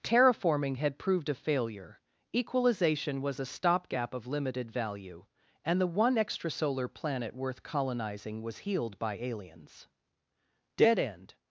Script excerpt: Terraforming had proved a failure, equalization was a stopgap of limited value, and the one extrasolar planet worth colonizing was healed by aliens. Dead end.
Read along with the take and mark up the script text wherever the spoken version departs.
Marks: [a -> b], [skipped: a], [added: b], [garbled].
Terraforming had proved a failure, equalization was a stopgap of limited value, and the one extrasolar planet worth colonizing was healed by aliens. Dead end.